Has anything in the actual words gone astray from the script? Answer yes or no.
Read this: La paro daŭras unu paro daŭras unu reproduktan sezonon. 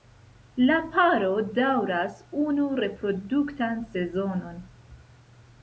yes